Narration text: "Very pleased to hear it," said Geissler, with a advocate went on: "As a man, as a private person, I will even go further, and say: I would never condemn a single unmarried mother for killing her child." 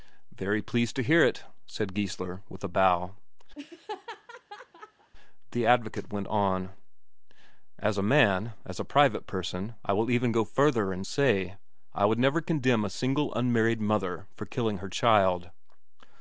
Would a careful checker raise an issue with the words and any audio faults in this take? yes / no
yes